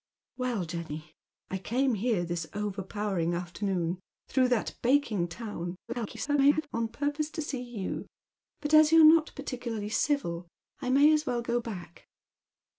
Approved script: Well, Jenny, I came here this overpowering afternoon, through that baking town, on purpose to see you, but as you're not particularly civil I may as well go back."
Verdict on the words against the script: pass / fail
fail